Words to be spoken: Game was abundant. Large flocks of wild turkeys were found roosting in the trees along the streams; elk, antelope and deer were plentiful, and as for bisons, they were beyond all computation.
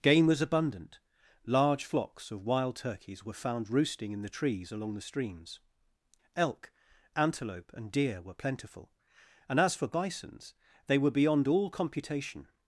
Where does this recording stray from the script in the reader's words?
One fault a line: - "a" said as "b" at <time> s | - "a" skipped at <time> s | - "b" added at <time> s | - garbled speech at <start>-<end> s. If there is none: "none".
none